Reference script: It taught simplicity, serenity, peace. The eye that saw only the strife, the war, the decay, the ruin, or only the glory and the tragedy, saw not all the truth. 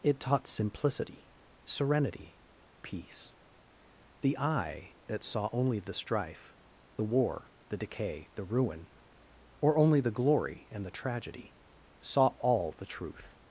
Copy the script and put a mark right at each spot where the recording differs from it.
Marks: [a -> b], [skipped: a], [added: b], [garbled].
It taught simplicity, serenity, peace. The eye that saw only the strife, the war, the decay, the ruin, or only the glory and the tragedy, saw [skipped: not] all the truth.